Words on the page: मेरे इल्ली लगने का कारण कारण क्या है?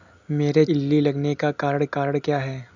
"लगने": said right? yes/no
yes